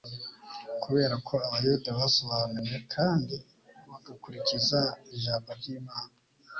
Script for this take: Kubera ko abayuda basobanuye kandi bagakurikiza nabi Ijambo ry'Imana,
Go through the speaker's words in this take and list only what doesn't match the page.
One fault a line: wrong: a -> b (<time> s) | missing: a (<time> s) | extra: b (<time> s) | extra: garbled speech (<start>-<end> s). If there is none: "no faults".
missing: nabi (4.8 s)